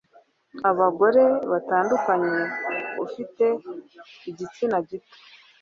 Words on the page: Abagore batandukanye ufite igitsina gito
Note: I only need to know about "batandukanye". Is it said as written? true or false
true